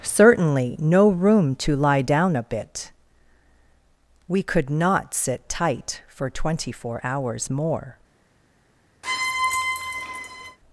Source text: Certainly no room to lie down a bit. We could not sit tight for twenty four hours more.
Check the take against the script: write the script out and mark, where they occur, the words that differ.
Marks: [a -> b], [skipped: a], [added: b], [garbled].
Certainly no room to lie down a bit. We could not sit tight for twenty four hours more.